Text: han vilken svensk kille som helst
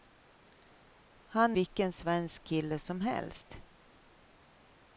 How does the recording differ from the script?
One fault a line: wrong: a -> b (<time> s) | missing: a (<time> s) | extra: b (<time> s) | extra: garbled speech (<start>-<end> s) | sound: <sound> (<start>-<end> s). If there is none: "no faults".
no faults